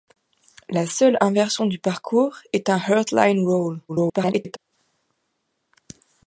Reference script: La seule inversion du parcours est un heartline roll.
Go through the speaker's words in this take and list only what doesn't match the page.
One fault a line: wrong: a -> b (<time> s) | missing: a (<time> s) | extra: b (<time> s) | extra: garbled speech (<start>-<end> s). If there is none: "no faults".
extra: garbled speech (3.9-4.6 s)